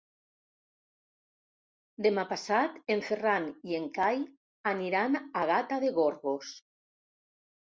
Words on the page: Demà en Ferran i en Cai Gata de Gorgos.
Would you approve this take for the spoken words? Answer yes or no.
no